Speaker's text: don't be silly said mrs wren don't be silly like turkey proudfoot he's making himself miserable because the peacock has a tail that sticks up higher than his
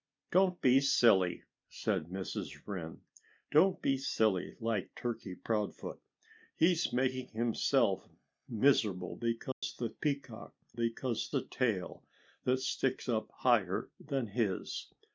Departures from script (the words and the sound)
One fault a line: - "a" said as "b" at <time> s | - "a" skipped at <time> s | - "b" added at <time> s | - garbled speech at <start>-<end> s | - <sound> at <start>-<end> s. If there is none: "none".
- dropout at 9.5-9.6 s
- "has" said as "because" at 10.7 s